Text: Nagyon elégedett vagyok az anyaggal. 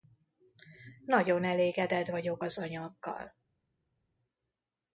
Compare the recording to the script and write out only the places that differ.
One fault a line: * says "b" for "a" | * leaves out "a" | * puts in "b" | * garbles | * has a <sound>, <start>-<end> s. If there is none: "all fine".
all fine